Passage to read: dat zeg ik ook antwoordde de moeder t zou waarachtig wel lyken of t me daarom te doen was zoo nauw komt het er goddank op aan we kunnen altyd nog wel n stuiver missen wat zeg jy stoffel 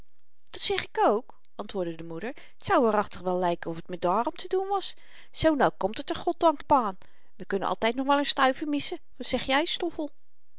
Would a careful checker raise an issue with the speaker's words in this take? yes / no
no